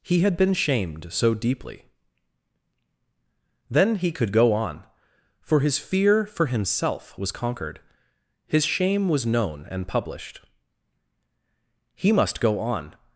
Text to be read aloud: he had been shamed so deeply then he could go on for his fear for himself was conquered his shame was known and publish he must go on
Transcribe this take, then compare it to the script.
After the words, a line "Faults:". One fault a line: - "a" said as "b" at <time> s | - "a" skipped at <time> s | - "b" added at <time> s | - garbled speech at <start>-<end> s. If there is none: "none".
he had been shamed so deeply then he could go on for his fear for himself was conquered his shame was known and published he must go on
Faults:
- "publish" said as "published" at 9.9 s